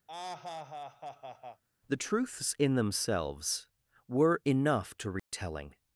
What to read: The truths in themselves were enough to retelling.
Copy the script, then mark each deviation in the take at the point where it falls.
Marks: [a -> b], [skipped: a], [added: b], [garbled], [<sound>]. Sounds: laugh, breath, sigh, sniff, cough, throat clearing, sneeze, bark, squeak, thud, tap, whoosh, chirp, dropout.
[laugh] The truths in themselves were enough to retelling. [dropout]